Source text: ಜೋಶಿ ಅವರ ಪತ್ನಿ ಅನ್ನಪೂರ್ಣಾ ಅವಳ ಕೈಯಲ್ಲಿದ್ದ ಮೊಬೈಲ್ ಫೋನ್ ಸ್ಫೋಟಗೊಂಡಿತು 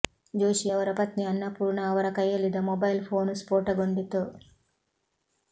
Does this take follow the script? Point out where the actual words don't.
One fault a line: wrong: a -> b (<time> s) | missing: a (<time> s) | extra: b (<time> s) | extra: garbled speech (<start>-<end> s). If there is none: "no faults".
wrong: ಅವಳ -> ಅವರ (1.9 s)